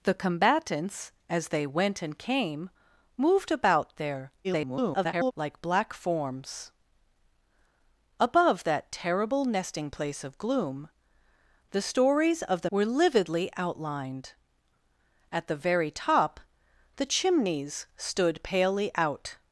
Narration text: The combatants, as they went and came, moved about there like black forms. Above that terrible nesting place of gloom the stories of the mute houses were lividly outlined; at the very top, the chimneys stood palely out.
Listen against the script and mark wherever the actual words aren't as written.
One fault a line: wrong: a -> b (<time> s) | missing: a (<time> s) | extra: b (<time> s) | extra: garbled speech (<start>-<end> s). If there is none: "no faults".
extra: garbled speech (4.4-5.3 s)
missing: mute houses (12.7 s)